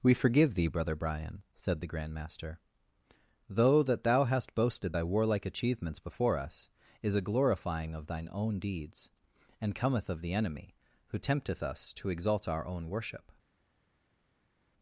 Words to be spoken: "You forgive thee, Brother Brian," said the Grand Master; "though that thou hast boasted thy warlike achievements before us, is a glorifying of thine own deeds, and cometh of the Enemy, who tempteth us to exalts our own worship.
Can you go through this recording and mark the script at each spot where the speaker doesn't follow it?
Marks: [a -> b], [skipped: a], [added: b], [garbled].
["You -> We] forgive thee, Brother Brian," said the Grand Master; "though that thou hast boasted thy warlike achievements before us, is a glorifying of thine own deeds, and cometh of the Enemy, who tempteth us to [exalts -> exalt] our own worship.